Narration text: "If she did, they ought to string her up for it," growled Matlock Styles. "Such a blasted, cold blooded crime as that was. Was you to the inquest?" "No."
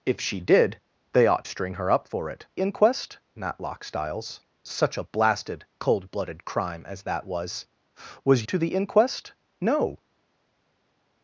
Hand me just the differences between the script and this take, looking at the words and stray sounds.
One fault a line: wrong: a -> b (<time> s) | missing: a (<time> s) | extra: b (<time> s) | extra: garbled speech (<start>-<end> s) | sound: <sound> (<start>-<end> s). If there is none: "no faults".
missing: to (1.5 s)
wrong: growled -> inquest (2.6 s)
missing: you (8.5 s)